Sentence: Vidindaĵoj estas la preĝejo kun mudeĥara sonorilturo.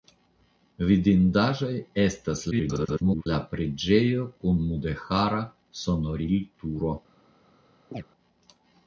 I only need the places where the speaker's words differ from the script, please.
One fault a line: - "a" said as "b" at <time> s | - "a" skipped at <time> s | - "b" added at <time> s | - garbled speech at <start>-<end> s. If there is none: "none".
- garbled speech at 2.5-3.3 s